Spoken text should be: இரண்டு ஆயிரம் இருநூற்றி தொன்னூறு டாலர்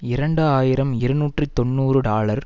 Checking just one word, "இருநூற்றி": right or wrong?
right